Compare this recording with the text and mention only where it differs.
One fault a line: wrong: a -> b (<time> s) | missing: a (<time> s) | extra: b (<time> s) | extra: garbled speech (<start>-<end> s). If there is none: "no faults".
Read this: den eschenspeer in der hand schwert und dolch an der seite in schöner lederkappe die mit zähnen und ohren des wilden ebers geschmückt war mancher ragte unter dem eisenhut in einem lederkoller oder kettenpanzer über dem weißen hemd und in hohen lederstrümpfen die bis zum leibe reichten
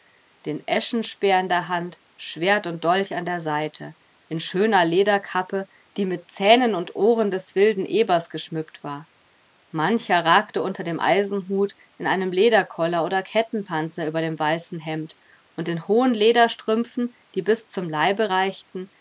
no faults